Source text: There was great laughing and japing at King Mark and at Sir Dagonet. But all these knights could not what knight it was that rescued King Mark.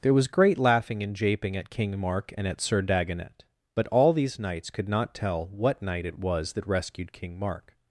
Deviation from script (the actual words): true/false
true